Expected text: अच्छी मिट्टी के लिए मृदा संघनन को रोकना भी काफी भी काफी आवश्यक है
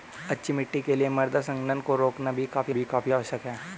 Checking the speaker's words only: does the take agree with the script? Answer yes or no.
yes